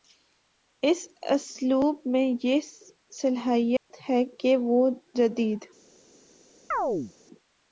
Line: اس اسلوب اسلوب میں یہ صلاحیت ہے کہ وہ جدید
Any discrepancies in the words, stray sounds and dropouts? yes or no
yes